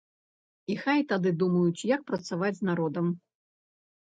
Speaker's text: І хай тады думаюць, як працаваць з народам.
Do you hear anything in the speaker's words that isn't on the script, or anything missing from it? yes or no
no